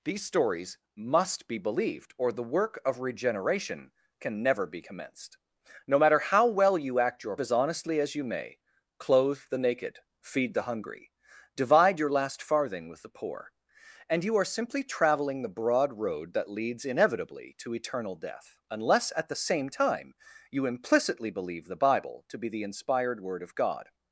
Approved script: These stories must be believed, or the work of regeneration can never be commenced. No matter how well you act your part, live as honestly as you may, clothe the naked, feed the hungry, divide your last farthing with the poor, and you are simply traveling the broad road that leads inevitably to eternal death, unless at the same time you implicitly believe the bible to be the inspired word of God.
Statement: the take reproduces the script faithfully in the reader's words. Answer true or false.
false